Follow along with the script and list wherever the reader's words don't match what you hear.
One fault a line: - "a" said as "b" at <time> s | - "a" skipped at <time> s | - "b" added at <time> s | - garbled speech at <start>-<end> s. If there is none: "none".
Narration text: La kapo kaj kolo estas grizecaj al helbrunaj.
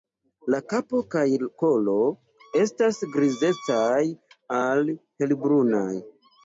none